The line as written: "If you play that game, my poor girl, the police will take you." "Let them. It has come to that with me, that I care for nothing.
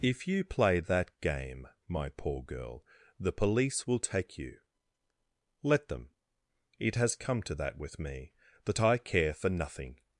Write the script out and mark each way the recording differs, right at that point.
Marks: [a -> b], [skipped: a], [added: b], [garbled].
"If you play that game, my poor girl, the police will take you." "Let them. It has come to that with me, that I care for nothing.